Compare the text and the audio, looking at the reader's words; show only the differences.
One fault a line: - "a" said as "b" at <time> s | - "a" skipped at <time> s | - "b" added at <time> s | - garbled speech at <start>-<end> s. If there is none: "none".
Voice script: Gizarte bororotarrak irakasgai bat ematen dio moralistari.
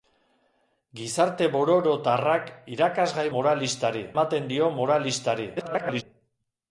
- "bat" said as "moralistari" at 3.4 s
- garbled speech at 5.6-6.0 s